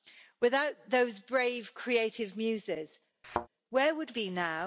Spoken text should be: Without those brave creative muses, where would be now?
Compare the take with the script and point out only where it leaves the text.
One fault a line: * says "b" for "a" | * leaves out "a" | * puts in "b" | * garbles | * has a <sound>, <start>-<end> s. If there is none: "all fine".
* has a thud, 3.2-3.5 s